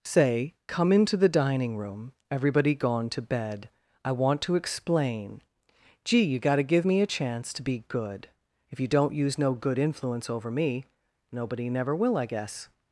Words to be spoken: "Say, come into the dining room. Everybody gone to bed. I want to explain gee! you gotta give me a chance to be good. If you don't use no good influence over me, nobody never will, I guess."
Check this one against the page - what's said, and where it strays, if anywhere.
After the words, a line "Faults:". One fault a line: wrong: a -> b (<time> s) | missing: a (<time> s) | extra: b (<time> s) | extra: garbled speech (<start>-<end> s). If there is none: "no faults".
"Say, come into the dining room. Everybody gone to bed. I want to explain gee! you gotta give me a chance to be good. If you don't use no good influence over me, nobody never will, I guess."
Faults:
no faults